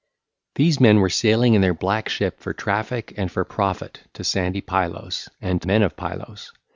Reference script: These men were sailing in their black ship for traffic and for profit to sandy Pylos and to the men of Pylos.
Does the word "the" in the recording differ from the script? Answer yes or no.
yes